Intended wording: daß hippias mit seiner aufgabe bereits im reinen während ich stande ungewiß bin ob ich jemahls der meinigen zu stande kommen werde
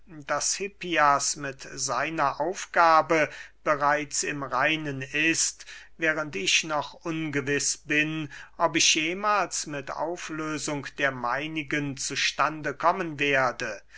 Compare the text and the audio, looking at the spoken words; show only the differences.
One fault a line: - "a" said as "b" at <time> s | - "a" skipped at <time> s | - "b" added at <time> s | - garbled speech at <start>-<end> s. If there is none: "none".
- "ist" added at 5.0 s
- "stande" said as "noch" at 6.6 s
- "mit auflösung" added at 9.7 s